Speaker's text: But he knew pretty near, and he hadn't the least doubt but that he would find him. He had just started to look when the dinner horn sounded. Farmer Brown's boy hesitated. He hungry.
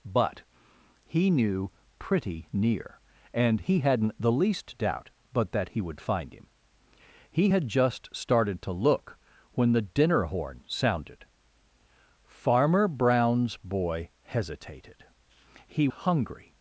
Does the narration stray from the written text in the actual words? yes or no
no